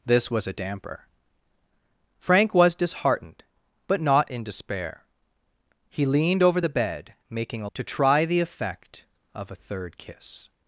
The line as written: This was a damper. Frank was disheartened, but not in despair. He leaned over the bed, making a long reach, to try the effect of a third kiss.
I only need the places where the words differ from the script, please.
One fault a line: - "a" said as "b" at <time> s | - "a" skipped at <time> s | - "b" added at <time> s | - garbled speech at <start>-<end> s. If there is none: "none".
- "long reach" skipped at 7.7 s